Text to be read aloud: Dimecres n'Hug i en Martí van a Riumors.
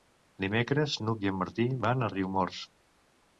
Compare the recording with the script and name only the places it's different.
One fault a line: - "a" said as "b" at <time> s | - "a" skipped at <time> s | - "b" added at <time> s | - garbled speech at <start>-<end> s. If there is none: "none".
none